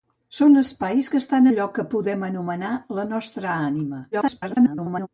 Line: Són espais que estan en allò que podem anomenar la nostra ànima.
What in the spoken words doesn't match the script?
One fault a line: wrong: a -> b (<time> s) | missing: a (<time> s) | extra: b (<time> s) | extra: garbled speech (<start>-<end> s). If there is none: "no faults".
missing: en (1.5 s)
extra: garbled speech (4.1-5.1 s)